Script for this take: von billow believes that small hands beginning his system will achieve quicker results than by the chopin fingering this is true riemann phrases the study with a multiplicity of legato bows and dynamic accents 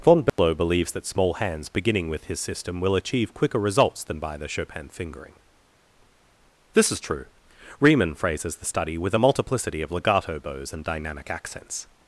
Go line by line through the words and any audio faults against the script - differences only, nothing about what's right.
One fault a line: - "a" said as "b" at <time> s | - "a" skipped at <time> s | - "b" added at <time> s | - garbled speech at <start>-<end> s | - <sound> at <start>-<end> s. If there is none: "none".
- dropout at 0.3-0.4 s
- "with" added at 2.1 s